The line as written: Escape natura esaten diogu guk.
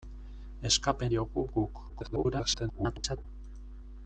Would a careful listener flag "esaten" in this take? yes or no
yes